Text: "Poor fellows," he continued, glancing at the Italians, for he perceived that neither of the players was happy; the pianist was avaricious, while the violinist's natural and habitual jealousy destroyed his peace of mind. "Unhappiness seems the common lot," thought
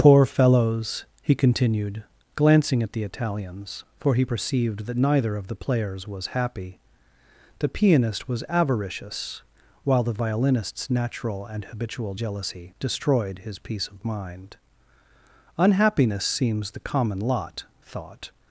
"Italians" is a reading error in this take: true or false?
false